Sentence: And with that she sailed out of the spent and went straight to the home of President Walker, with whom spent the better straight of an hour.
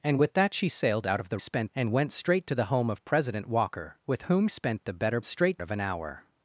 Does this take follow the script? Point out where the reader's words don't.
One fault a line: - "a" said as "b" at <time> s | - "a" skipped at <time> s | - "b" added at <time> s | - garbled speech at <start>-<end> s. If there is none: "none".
none